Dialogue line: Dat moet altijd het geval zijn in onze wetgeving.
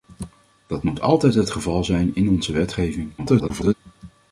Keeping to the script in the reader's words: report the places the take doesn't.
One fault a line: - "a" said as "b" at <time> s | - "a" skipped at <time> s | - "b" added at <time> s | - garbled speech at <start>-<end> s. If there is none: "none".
- garbled speech at 3.2-3.7 s